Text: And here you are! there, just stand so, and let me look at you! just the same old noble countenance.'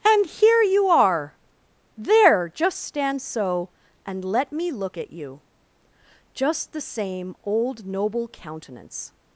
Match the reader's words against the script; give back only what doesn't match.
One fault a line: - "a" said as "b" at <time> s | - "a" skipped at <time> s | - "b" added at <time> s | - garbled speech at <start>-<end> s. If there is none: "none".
none